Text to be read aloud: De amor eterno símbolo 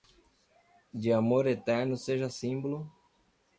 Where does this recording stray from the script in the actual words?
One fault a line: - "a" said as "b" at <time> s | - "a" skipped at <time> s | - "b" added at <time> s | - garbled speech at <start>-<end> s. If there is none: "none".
- "seja" added at 1.9 s